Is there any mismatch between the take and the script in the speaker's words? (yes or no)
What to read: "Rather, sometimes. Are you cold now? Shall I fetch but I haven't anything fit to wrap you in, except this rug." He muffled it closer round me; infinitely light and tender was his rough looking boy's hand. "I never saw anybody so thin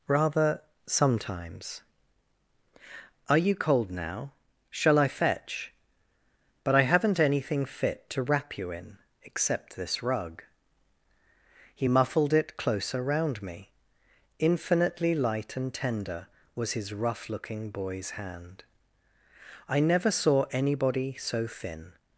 no